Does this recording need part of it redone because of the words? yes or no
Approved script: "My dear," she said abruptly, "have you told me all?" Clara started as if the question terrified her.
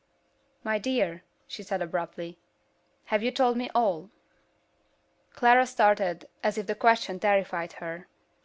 no